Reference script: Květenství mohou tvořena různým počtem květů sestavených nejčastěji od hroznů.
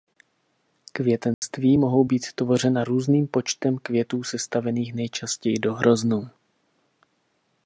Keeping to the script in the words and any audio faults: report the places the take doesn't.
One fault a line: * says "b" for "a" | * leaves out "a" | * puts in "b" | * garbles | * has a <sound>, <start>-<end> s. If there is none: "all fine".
* has a dropout, 1.3-1.4 s
* puts in "být"
* says "do" for "od"